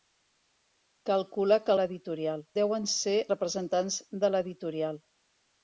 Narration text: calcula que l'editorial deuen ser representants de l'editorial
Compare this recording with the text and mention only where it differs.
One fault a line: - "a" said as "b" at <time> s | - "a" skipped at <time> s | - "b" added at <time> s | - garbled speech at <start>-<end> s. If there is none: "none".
none